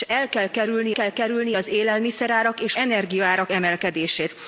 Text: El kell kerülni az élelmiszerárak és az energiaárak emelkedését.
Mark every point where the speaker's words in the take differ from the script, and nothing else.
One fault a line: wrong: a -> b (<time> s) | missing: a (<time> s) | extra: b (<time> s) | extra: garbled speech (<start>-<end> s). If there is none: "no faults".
extra: kell kerülni (0.9 s)
missing: az (2.7 s)